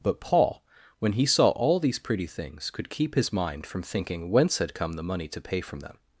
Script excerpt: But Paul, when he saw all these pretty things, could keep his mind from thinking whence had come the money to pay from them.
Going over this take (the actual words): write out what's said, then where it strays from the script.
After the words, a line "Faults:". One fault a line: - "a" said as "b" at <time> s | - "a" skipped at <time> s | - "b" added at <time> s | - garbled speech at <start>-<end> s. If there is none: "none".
But Paul, when he saw all these pretty things, could keep his mind from thinking whence had come the money to pay from them.
Faults:
none